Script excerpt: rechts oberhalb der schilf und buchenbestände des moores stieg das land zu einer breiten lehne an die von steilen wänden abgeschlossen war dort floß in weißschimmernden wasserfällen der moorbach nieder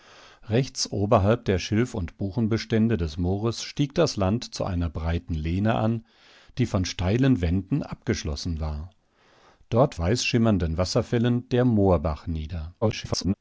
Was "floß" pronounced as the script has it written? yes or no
no